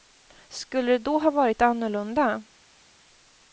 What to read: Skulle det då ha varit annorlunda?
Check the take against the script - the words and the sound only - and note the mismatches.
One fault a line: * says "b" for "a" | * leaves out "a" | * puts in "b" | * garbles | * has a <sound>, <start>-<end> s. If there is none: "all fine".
all fine